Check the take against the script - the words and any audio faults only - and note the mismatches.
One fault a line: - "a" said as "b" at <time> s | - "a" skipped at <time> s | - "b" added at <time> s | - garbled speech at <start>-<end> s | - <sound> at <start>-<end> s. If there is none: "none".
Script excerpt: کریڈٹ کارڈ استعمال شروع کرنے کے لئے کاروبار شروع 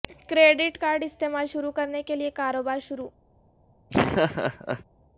- laugh at 3.9-4.8 s